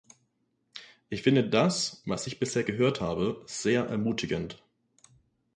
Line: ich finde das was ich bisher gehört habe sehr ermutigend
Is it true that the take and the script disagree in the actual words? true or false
false